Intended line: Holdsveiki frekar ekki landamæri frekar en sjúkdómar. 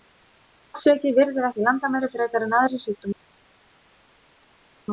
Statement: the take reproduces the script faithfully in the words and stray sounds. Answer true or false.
false